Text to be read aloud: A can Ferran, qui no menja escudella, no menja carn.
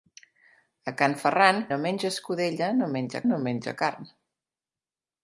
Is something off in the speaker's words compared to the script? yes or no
yes